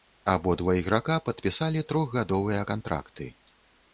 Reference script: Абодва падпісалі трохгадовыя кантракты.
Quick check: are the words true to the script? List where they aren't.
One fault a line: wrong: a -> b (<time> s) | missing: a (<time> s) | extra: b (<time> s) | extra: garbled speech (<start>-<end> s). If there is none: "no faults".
extra: іграка (0.8 s)